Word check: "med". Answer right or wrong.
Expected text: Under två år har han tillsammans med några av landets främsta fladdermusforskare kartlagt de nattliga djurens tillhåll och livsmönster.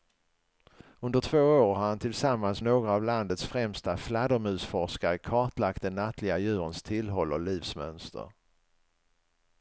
wrong